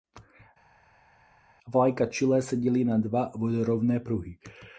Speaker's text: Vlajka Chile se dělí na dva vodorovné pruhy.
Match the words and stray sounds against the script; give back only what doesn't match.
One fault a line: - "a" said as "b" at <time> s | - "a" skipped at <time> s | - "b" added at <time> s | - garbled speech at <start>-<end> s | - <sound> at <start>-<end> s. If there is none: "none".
none